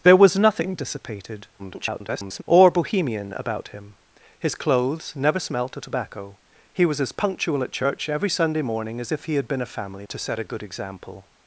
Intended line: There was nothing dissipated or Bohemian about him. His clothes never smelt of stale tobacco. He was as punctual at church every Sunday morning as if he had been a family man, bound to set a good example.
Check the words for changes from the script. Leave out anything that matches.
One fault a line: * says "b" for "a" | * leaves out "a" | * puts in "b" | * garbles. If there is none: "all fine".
* garbles
* leaves out "stale"
* leaves out "man bound"